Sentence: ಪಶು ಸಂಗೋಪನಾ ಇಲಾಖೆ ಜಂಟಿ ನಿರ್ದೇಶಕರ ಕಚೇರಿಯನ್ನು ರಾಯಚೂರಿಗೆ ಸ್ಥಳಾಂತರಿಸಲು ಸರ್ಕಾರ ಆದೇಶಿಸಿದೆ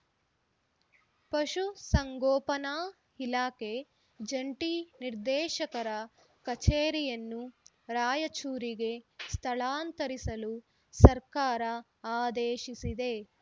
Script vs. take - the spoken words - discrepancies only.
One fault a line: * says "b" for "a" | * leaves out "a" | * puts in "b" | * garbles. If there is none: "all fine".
all fine